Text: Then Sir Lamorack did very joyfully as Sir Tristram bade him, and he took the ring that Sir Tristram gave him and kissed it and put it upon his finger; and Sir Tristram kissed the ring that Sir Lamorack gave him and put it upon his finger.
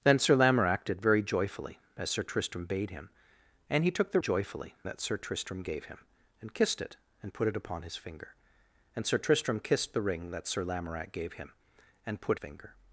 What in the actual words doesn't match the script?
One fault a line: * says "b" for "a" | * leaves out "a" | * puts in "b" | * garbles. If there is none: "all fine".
* says "joyfully" for "ring"
* leaves out "it upon his"